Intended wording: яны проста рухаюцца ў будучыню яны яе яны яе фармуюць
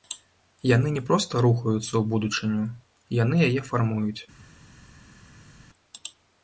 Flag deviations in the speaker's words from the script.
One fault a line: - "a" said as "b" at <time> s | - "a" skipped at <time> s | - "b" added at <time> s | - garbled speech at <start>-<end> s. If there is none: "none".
- "не" added at 0.9 s
- "яны яе" skipped at 3.6 s